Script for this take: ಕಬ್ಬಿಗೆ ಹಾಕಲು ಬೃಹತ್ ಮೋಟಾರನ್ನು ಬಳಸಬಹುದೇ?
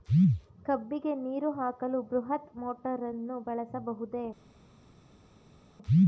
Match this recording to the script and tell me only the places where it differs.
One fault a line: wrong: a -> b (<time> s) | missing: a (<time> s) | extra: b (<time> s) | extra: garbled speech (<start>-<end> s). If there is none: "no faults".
extra: ನೀರು (1.1 s)